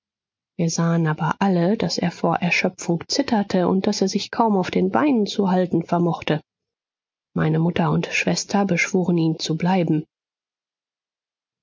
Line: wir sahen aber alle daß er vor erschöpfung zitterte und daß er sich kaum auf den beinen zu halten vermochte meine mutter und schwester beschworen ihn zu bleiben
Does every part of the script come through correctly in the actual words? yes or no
yes